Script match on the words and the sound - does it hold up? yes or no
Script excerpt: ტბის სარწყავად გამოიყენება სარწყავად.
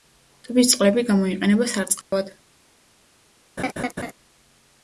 no